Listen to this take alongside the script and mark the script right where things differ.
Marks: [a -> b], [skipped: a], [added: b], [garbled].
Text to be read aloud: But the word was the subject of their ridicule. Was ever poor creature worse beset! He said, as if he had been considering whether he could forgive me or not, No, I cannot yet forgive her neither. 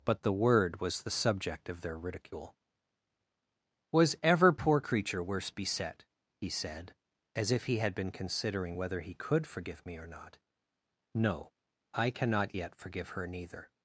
But the word was the subject of their ridicule. Was ever poor creature worse beset! He said, as if he had been considering whether he could forgive me or not, No, I cannot yet forgive her neither.